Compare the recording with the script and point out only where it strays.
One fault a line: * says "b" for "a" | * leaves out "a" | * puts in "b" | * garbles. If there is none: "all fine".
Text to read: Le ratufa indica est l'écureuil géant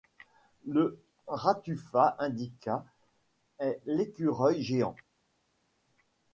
all fine